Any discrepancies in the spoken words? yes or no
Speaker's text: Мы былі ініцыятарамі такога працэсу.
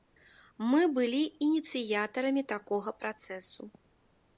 no